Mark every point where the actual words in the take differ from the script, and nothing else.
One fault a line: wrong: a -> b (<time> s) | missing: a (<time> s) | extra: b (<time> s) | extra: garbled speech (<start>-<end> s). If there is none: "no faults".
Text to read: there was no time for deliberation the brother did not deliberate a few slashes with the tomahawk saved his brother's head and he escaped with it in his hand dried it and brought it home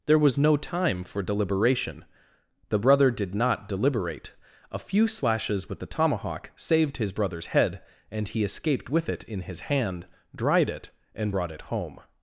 no faults